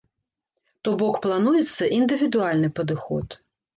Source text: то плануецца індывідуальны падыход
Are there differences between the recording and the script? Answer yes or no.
yes